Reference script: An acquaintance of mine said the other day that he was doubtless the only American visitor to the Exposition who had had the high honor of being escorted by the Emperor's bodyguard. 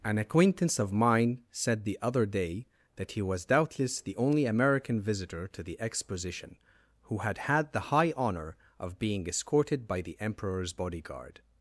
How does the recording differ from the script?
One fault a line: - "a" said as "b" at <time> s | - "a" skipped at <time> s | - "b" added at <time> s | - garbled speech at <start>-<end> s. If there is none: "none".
none